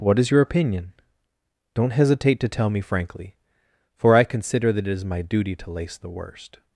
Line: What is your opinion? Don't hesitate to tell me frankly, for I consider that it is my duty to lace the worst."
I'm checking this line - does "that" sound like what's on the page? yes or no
yes